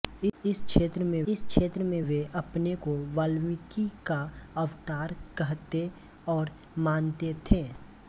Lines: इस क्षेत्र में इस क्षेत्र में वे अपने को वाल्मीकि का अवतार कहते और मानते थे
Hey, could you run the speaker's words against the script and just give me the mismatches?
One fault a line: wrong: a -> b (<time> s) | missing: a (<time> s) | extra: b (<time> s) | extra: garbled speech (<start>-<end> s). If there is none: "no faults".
no faults